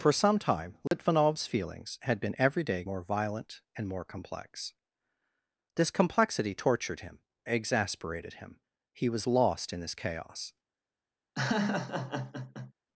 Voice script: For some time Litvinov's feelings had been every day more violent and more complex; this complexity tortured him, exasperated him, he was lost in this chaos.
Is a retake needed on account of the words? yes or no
no